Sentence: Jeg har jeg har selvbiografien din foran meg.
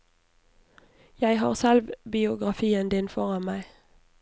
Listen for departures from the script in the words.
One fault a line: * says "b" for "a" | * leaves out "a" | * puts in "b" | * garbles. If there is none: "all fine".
* leaves out "jeg har"